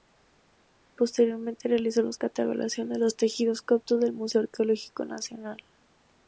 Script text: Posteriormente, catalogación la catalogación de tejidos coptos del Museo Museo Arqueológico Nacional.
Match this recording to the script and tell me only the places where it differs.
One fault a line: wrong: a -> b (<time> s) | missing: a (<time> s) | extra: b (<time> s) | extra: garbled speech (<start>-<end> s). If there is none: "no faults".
wrong: catalogación -> realizó (1.7 s)
extra: los (3.0 s)
missing: Museo (4.4 s)